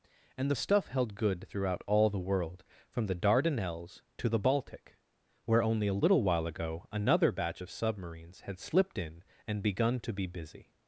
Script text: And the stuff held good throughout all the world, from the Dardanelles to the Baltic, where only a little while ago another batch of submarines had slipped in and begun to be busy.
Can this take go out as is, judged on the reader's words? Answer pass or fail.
pass